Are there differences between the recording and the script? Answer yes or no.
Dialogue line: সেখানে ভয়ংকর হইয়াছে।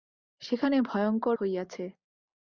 no